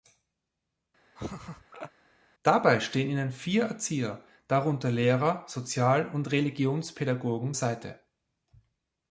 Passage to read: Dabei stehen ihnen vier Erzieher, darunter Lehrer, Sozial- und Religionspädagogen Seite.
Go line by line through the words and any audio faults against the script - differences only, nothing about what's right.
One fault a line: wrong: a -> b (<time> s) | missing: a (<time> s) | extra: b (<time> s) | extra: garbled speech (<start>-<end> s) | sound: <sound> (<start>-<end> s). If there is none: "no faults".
sound: laugh (1.2-1.9 s)